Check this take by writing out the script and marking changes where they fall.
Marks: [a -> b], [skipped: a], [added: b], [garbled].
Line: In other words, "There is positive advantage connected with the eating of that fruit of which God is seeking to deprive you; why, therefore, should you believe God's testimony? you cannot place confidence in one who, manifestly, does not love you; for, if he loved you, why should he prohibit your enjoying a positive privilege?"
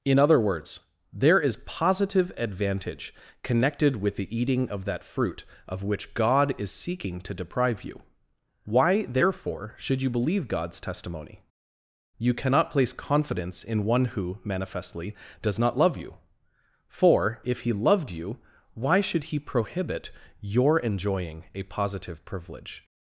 In other words, "There is positive advantage connected with the eating of that fruit of which God is seeking to deprive you; why, therefore, should you believe God's testimony? you cannot place confidence in one who, manifestly, does not love you; for, if he loved you, why should he prohibit your enjoying a positive privilege?"